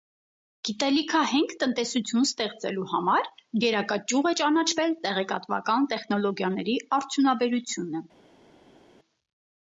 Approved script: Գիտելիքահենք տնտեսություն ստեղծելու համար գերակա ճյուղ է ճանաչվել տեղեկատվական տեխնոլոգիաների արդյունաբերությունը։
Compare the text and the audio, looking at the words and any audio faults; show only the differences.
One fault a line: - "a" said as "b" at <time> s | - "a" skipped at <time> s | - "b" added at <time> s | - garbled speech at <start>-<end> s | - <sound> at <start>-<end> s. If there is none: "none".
none